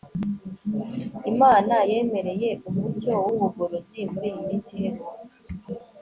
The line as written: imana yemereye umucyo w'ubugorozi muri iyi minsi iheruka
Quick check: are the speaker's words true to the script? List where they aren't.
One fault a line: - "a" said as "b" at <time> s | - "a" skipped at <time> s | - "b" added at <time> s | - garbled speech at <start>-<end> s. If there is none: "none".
none